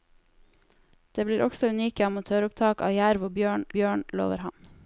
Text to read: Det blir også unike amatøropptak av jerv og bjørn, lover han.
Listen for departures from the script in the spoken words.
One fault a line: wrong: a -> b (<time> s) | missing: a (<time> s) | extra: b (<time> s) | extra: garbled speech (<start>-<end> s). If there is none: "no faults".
extra: bjørn (3.8 s)